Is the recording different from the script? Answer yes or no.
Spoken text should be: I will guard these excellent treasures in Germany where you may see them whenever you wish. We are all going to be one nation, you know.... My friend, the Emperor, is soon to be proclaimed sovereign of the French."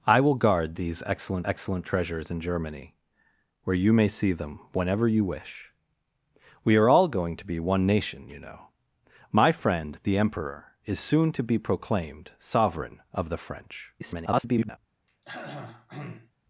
yes